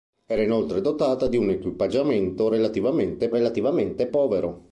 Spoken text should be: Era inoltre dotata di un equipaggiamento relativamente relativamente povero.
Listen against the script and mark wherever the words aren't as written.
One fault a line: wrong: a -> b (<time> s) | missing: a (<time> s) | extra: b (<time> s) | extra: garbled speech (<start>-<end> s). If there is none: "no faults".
no faults